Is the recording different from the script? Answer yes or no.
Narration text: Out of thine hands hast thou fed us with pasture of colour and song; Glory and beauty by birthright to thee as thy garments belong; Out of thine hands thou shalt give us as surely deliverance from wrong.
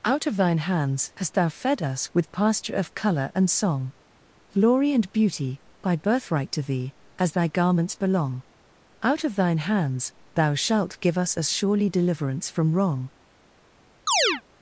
no